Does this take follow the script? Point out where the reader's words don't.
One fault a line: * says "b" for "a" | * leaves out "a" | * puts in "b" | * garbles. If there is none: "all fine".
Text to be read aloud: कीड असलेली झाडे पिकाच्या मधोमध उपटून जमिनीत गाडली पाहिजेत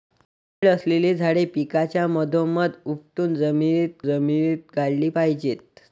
* puts in "जमिनीत"